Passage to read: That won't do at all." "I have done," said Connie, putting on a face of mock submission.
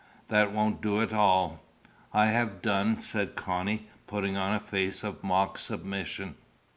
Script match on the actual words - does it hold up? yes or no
yes